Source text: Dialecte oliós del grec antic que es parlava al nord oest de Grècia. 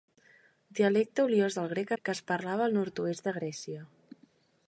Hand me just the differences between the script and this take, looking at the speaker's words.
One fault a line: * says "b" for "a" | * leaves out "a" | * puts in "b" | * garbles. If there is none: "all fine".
* leaves out "antic"